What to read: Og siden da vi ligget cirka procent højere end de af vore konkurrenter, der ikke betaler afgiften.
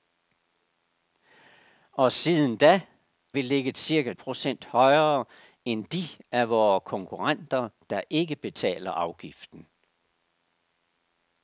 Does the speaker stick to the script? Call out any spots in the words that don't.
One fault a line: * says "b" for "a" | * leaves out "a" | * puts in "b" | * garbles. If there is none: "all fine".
all fine